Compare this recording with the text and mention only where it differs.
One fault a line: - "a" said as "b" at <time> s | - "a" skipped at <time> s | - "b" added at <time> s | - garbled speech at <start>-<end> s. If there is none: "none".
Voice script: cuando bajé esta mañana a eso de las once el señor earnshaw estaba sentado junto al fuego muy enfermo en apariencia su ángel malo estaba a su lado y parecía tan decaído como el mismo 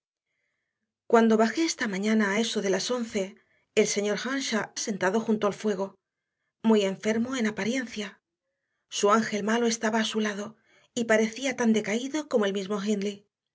- "estaba" skipped at 4.7 s